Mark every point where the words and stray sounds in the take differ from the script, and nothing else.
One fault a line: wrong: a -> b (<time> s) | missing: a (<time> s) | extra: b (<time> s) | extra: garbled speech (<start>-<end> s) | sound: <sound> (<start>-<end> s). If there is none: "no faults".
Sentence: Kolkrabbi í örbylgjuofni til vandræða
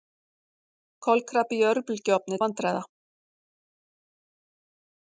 missing: til (2.4 s)